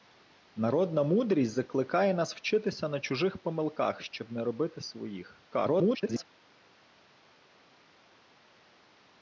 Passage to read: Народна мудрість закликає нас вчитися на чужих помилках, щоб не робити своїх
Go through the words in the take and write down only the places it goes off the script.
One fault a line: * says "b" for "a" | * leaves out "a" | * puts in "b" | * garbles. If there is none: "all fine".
* garbles